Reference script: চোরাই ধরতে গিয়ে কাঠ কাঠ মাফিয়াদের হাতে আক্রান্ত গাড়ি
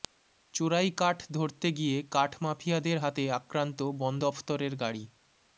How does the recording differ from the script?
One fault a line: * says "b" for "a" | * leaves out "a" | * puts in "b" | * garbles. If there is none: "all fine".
* puts in "কাঠ"
* leaves out "কাঠ"
* puts in "বন দফতরের"